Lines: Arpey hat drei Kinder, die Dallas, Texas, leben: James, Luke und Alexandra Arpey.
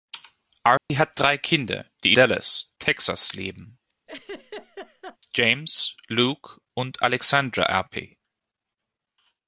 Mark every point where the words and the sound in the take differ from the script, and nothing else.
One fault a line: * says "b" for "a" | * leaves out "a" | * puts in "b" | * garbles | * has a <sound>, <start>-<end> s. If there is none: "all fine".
* has a dropout, 0.8-0.9 s
* has a laugh, 4.1-5.2 s